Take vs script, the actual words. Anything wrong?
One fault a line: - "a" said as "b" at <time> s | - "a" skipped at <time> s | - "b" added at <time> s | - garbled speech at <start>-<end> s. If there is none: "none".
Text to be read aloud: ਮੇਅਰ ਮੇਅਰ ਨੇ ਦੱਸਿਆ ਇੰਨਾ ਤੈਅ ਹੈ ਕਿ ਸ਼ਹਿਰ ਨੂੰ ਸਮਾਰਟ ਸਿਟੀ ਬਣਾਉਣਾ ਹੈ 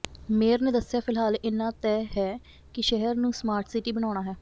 - "ਮੇਅਰ" skipped at 0.6 s
- "ਫਿਲਹਾਲ" added at 1.0 s